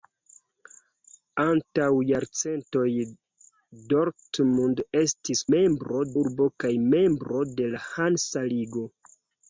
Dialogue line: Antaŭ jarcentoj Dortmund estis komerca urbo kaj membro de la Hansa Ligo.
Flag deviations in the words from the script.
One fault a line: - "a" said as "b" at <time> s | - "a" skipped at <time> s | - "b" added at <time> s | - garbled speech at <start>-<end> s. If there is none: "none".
- "komerca" said as "membro" at 5.6 s